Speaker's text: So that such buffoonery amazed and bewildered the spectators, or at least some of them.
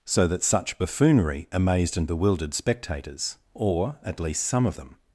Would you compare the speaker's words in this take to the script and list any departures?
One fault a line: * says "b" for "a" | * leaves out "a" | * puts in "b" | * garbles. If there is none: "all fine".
* leaves out "the"